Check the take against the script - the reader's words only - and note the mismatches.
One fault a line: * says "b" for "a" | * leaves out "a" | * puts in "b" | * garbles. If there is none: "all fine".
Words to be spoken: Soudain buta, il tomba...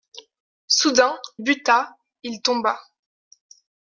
all fine